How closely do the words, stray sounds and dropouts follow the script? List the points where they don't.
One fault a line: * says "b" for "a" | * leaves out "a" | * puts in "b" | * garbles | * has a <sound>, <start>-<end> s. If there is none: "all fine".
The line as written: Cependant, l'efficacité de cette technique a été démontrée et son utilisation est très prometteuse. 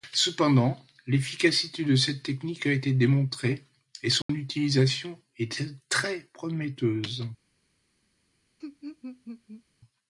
* has a dropout, 4.2-4.3 s
* has a laugh, 8.6-9.6 s